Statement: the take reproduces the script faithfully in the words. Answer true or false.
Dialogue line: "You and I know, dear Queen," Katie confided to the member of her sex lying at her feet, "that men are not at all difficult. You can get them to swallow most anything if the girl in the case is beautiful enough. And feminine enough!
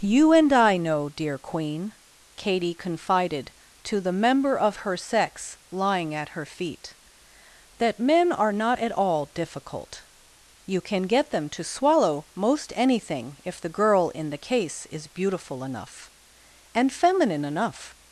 true